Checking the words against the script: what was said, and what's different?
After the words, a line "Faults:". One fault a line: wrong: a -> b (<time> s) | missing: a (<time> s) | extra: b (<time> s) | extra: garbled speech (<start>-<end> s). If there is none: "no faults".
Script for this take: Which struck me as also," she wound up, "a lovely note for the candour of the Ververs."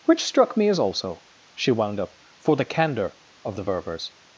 Which struck me as also," she wound up, "for the candour of the Ververs."
Faults:
missing: a lovely note (2.2 s)